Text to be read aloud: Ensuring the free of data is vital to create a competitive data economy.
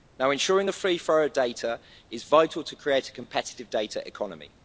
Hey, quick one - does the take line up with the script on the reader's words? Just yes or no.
no